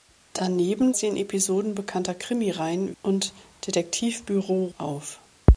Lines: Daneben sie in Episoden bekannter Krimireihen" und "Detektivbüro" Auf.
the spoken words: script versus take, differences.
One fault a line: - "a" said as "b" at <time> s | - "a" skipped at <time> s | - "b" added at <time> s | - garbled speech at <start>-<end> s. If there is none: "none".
none